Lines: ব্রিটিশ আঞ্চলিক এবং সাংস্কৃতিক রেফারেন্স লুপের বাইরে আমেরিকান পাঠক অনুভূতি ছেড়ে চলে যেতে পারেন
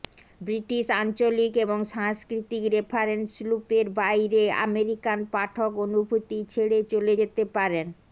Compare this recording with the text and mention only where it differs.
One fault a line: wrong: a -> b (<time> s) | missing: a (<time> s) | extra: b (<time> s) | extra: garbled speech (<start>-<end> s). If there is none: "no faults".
no faults